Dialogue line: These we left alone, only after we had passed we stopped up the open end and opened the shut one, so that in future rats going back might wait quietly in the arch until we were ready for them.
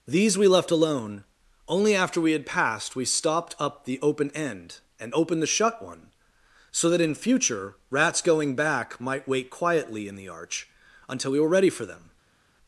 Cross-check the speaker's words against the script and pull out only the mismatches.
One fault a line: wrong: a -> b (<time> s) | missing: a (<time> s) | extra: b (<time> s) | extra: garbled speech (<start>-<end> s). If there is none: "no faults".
no faults